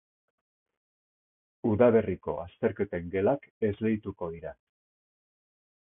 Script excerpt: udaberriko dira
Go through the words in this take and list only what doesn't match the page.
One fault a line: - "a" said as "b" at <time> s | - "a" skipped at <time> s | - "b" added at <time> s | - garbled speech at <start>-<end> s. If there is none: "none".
- "azterketen gelak esleituko" added at 2.5 s